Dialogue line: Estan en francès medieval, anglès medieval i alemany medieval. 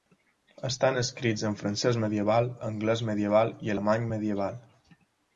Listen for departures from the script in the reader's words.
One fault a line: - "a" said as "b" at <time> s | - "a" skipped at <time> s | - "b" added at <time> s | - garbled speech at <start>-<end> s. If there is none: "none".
- "escrits" added at 1.0 s